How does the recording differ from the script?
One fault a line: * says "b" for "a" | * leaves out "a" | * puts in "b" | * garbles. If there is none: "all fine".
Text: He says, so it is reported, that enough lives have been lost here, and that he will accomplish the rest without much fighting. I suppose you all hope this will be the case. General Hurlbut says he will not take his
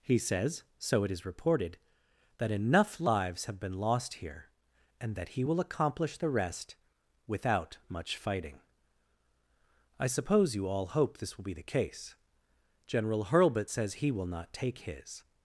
all fine